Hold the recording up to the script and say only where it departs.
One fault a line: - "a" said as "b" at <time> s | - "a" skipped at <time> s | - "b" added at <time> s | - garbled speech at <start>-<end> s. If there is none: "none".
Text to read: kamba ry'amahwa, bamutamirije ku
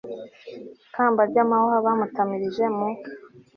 - "ku" said as "mu" at 2.8 s